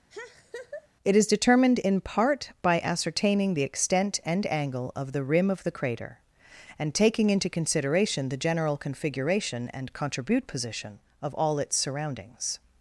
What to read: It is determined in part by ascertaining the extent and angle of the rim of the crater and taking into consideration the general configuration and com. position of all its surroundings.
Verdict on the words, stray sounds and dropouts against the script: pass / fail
fail